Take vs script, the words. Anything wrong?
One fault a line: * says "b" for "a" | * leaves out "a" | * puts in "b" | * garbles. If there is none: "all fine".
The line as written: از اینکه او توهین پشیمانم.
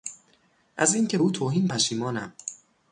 all fine